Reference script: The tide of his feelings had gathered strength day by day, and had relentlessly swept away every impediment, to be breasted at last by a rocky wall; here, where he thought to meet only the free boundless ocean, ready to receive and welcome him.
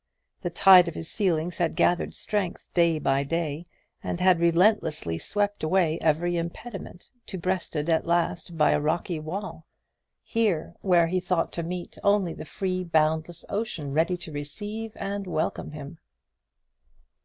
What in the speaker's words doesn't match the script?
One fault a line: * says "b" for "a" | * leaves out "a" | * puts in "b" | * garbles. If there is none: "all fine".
* leaves out "be"